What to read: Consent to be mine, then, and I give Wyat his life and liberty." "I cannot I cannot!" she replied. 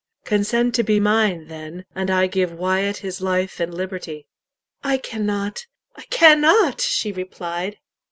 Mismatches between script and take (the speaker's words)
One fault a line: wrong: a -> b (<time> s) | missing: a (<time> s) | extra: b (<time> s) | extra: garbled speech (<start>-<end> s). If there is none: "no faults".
no faults